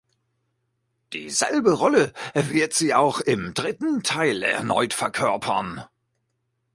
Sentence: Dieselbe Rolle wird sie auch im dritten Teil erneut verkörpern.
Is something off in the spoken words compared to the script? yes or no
no